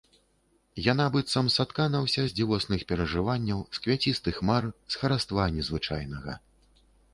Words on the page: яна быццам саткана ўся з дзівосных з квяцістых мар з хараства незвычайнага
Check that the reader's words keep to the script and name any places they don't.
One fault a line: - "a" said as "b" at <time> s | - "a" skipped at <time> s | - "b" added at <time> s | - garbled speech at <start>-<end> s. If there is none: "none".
- "перажыванняў" added at 2.9 s